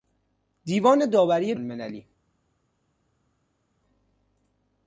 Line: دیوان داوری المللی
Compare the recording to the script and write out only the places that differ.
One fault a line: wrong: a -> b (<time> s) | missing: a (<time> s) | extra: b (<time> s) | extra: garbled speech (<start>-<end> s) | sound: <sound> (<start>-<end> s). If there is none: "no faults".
no faults